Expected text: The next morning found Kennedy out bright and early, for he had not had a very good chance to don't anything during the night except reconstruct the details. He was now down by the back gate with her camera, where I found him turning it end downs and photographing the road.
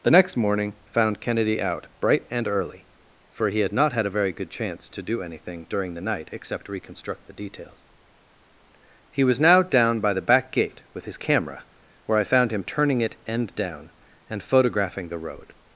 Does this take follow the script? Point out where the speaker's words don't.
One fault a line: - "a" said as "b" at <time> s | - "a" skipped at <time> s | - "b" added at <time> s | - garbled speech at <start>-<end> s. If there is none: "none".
- "don't" said as "do" at 5.0 s
- "her" said as "his" at 11.1 s
- "downs" said as "down" at 13.5 s